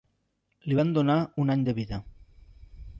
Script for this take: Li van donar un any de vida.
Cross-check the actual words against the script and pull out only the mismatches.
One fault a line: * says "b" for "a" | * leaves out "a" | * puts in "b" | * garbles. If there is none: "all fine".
all fine